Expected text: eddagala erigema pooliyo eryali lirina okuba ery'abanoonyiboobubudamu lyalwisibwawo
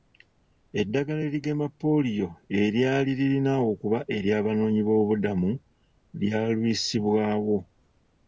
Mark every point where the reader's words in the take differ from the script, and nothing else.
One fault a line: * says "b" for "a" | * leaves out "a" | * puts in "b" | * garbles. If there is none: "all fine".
all fine